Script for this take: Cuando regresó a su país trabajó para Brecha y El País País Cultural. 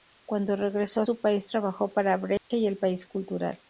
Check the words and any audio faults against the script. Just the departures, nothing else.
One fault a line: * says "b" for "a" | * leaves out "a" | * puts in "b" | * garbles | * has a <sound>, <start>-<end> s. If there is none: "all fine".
* has a dropout, 2.4-2.5 s
* leaves out "País"